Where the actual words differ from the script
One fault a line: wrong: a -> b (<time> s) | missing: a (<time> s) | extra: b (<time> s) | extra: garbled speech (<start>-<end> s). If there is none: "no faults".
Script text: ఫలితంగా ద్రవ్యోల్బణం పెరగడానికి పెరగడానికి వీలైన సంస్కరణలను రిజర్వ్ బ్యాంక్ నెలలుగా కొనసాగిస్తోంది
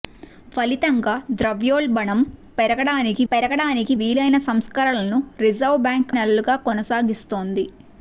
no faults